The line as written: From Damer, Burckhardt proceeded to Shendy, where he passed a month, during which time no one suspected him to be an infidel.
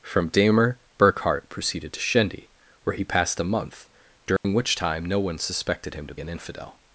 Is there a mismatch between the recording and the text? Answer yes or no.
yes